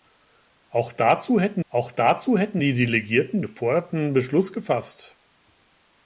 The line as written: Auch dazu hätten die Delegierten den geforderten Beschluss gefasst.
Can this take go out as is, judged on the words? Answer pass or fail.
fail